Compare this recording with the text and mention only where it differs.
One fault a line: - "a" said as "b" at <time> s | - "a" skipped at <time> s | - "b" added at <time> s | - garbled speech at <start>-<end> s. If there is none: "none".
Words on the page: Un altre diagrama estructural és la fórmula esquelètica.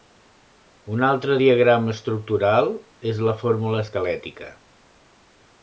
none